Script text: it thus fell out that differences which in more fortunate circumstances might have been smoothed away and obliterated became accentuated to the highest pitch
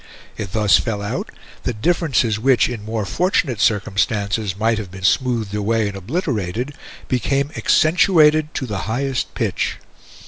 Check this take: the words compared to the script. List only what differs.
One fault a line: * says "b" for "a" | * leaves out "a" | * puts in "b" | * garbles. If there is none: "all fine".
all fine